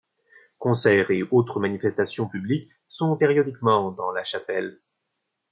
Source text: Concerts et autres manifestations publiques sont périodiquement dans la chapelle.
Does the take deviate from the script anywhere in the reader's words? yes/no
no